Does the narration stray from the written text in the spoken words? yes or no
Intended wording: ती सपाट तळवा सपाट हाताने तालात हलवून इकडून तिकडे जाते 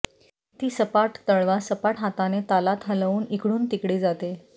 no